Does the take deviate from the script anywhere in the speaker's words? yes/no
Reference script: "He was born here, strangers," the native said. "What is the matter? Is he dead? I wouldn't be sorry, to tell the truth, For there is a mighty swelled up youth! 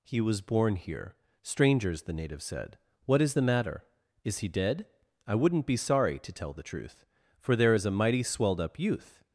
no